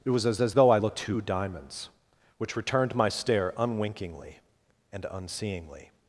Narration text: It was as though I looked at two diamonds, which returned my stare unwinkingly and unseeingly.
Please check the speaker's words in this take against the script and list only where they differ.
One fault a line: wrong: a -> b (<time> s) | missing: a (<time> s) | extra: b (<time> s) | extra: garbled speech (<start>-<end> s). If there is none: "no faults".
extra: as (0.4 s)
missing: at (1.0 s)